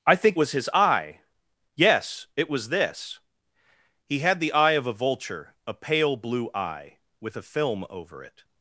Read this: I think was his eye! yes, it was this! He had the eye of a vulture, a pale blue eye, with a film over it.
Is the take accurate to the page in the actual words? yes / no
yes